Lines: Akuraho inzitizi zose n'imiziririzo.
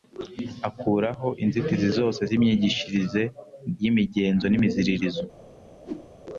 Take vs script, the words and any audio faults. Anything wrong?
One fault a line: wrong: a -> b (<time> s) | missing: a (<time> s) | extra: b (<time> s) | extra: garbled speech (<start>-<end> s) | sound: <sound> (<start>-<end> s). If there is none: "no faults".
extra: z'imyigishirize y'imigenzo (2.3 s)
sound: whoosh (5.8-6.1 s)